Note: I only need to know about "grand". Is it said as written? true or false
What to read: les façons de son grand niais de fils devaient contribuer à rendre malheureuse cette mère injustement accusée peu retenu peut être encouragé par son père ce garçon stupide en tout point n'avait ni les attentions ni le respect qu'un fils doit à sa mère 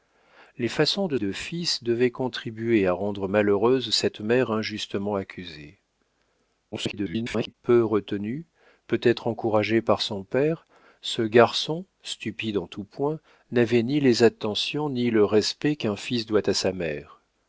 false